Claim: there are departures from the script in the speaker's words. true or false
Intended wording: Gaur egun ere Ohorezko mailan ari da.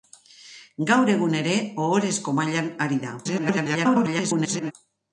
true